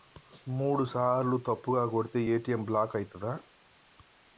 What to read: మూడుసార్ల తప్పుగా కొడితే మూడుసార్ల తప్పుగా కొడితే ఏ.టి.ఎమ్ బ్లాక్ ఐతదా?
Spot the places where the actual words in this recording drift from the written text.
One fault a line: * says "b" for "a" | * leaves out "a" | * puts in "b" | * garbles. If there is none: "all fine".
* leaves out "మూడుసార్ల తప్పుగా కొడితే"